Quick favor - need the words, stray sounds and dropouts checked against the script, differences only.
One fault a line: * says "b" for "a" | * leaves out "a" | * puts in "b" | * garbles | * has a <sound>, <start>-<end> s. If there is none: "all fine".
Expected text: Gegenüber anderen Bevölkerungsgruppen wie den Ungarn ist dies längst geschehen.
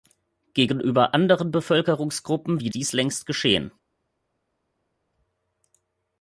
* leaves out "den Ungarn ist"